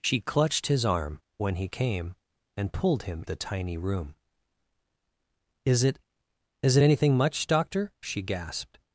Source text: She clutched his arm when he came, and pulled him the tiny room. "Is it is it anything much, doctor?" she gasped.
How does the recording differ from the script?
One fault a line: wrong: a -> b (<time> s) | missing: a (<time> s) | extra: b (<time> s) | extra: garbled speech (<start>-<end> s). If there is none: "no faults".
no faults